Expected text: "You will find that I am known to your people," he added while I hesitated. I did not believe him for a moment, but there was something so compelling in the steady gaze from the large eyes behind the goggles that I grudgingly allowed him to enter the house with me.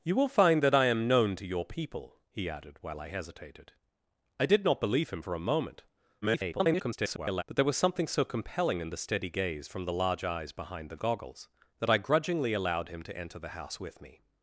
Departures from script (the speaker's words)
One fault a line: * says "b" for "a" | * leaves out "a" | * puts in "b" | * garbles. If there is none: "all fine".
* garbles